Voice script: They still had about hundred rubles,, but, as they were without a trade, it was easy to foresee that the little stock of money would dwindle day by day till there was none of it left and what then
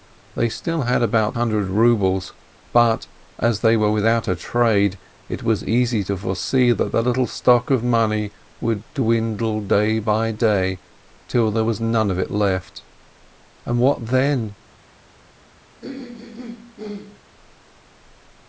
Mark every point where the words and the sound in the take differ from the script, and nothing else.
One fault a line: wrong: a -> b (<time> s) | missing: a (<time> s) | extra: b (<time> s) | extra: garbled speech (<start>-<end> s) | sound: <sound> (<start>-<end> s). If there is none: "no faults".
sound: throat clearing (15.8-17.2 s)